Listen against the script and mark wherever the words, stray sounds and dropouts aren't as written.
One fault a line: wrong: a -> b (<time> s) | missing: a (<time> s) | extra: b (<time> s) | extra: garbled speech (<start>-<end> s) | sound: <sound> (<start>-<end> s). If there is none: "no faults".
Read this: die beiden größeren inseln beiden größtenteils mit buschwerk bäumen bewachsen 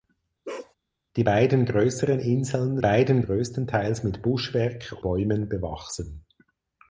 sound: bark (0.4-0.7 s)